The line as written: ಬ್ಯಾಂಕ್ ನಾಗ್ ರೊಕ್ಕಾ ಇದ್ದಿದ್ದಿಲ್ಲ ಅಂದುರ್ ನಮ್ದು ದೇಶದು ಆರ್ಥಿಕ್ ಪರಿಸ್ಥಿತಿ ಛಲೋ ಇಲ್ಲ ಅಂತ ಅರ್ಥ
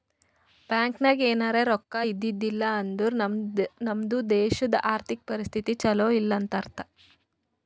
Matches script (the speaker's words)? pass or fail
fail